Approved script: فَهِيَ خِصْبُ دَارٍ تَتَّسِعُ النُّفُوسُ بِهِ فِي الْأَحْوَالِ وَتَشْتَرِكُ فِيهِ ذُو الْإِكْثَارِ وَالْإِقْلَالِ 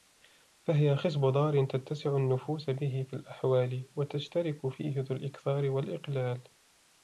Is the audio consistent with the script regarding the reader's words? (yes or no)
yes